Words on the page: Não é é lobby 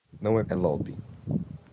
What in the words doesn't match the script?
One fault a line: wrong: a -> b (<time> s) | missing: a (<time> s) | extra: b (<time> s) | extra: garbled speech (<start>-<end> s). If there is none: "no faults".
no faults